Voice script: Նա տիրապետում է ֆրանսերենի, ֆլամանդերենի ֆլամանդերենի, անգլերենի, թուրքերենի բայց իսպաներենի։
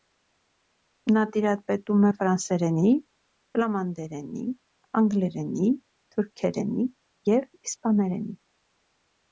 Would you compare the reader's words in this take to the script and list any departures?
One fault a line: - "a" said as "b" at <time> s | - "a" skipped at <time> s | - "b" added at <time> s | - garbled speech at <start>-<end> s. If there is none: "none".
- "ֆլամանդերենի" skipped at 4.5 s
- "բայց" said as "և" at 7.3 s